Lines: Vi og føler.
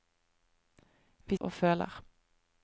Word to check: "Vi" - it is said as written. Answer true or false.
true